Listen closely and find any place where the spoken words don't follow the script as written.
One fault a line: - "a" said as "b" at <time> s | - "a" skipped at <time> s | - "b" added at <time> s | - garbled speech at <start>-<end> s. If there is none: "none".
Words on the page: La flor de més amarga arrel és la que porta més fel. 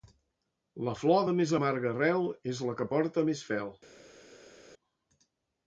none